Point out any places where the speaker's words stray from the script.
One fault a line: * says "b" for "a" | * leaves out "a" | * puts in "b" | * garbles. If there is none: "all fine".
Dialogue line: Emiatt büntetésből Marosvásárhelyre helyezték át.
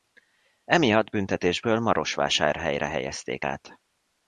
all fine